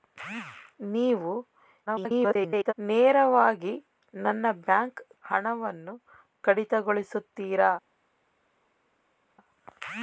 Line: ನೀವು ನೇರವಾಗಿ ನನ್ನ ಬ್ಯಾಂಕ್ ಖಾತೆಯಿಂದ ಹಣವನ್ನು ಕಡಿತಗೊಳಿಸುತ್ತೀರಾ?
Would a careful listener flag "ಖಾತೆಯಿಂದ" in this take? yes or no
yes